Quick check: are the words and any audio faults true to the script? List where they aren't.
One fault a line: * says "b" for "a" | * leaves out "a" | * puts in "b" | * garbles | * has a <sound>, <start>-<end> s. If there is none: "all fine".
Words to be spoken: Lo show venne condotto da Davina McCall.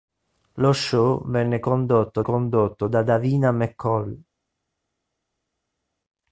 * puts in "condotto"